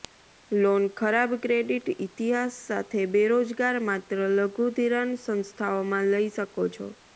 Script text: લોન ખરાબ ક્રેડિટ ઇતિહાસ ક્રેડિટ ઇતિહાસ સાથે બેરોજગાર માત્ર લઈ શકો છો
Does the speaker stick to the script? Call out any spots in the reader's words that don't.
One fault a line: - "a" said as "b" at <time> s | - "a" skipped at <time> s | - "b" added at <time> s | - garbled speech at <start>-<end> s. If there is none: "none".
- "ક્રેડિટ ઇતિહાસ" skipped at 2.6 s
- "લઘુ ધિરાણ સંસ્થાઓમાં" added at 4.4 s